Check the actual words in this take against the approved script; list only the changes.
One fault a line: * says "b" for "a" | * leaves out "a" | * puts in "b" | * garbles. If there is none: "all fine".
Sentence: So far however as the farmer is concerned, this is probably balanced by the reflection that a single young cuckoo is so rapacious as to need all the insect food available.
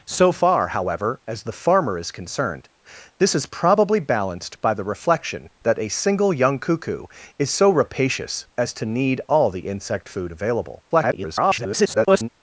* garbles